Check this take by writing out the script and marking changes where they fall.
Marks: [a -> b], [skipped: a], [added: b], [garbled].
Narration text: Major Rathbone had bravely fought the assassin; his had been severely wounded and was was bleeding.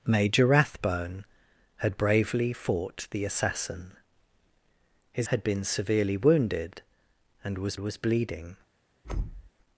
Major Rathbone had bravely fought the assassin; his had been severely wounded and was was bleeding.